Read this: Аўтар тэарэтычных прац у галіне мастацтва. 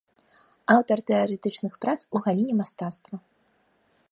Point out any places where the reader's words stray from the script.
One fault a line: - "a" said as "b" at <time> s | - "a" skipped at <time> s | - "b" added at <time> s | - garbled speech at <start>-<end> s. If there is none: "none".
none